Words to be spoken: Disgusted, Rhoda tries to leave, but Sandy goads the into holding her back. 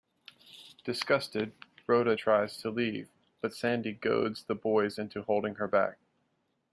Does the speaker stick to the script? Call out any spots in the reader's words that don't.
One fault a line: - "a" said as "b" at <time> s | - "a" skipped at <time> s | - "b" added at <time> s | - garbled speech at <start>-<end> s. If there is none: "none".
- "boys" added at 4.5 s